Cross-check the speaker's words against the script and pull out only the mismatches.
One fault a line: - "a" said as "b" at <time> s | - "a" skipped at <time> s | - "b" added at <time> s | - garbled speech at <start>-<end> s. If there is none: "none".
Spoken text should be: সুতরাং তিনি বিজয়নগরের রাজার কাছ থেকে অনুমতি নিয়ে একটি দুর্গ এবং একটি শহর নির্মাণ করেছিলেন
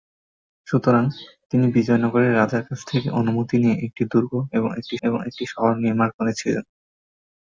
- "এবং একটি" added at 5.0 s